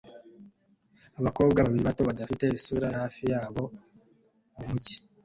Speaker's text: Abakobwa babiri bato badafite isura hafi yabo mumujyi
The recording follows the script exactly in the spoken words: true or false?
true